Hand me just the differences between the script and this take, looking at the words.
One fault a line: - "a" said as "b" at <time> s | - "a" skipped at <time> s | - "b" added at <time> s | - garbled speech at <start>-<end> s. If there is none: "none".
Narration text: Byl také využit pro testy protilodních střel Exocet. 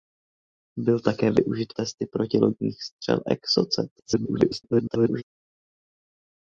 - "pro" skipped at 1.7 s
- garbled speech at 4.0-5.2 s